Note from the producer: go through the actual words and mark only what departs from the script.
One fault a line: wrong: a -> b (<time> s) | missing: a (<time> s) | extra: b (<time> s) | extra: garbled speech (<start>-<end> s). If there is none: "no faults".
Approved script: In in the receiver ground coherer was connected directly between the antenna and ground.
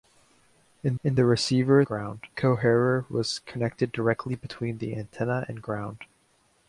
no faults